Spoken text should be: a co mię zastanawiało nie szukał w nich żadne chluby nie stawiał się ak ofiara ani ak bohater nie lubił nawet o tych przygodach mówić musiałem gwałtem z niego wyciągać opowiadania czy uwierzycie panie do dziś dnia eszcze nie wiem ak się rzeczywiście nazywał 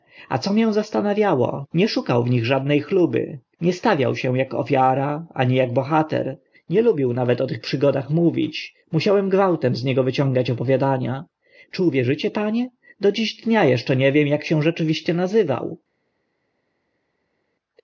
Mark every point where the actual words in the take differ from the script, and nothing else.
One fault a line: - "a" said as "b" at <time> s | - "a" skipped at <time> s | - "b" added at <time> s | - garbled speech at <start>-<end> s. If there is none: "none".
none